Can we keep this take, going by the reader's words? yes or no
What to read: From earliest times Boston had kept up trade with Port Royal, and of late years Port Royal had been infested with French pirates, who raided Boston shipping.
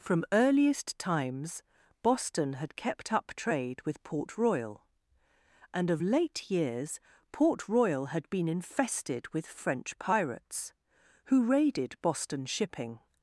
yes